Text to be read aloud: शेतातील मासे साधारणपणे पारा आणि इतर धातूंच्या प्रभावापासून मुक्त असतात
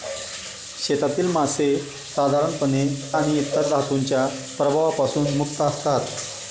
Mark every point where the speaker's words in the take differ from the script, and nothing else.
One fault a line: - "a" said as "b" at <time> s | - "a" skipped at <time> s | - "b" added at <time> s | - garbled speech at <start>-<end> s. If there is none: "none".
- "पारा" skipped at 2.9 s